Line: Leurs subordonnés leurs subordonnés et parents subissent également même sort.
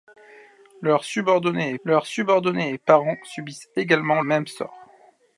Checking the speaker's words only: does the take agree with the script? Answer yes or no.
yes